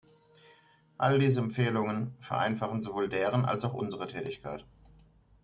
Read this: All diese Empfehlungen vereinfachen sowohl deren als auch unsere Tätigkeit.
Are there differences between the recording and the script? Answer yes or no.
no